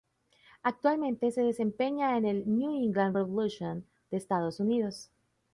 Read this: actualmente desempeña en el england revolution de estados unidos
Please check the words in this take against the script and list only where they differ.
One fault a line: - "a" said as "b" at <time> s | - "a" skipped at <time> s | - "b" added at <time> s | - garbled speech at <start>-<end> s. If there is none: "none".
- "se" added at 1.3 s
- "new" added at 2.5 s